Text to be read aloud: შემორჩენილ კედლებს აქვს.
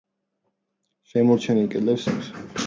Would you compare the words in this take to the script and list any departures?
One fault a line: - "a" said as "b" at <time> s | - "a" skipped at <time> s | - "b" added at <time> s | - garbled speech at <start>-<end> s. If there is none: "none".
none